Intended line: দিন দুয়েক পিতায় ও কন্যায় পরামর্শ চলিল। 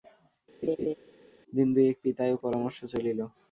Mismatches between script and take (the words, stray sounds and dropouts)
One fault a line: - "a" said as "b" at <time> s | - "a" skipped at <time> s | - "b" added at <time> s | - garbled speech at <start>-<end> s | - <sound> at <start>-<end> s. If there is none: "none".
- laugh at 0.6-0.9 s
- "কন্যায়" skipped at 2.4 s